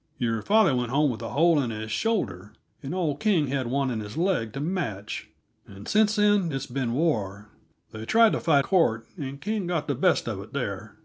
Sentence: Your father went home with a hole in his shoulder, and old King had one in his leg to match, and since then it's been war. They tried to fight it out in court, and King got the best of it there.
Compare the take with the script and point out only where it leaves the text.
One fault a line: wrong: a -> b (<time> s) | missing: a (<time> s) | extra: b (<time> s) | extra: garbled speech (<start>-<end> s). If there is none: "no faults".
missing: it out in (8.6 s)